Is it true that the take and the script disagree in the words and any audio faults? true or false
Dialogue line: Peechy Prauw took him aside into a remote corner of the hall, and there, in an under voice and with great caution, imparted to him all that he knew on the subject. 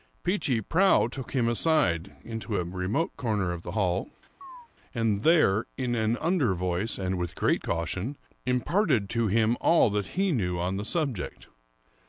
true